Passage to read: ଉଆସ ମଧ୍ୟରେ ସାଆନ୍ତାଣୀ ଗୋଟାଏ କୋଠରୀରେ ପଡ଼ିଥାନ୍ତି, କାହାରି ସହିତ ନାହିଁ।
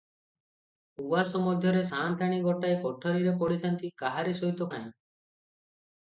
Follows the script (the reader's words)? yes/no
yes